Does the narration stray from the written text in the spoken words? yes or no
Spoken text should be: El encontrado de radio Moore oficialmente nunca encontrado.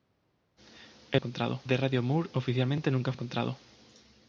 no